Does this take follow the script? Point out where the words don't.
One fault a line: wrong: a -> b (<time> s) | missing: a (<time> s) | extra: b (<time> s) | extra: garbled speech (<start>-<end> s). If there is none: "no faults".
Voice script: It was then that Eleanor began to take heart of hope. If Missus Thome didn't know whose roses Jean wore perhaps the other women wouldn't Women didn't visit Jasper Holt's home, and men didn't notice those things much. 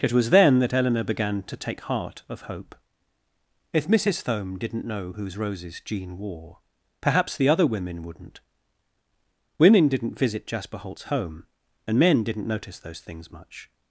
no faults